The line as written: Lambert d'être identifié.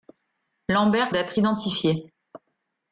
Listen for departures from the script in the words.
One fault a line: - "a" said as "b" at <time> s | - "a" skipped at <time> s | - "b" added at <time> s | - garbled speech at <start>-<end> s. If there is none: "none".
none